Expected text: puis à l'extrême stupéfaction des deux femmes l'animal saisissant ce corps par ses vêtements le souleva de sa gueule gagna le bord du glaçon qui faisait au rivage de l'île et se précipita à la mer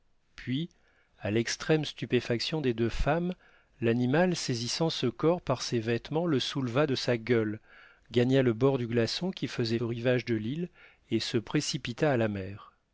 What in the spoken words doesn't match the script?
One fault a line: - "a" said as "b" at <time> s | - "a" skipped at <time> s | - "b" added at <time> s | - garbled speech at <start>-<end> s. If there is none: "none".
none